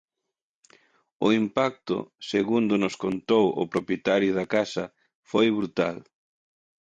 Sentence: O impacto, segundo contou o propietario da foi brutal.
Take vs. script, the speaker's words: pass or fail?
fail